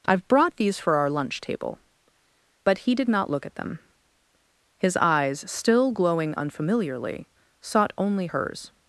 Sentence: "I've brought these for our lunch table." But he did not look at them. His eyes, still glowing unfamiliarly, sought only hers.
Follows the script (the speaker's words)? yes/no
yes